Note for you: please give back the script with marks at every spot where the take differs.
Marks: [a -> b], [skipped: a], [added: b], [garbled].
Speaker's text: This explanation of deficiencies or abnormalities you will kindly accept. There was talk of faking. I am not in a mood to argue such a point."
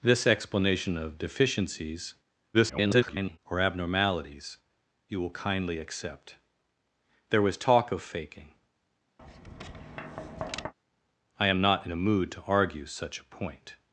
This explanation of deficiencies [garbled] or abnormalities you will kindly accept. There was talk of faking. I am not in a mood to argue such a point."